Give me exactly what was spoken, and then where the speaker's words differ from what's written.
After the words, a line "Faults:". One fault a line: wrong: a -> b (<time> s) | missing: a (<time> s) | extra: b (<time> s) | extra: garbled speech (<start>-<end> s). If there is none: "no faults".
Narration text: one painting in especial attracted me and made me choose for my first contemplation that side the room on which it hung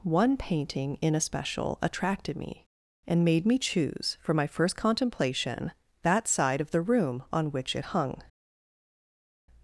one painting in especial attracted me and made me choose for my first contemplation that side of the room on which it hung
Faults:
extra: of (6.6 s)